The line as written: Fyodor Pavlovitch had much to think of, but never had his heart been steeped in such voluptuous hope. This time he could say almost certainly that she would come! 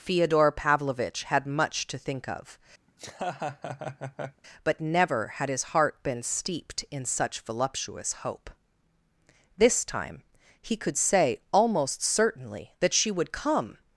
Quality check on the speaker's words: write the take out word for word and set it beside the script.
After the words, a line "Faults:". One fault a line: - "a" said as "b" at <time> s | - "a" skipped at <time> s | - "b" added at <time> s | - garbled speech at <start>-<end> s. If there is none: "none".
Fyodor Pavlovitch had much to think of, but never had his heart been steeped in such voluptuous hope. This time he could say almost certainly that she would come!
Faults:
none